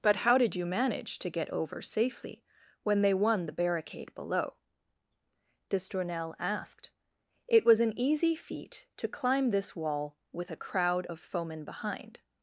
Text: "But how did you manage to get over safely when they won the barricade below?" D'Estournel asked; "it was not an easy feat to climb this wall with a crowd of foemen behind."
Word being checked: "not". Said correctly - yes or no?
no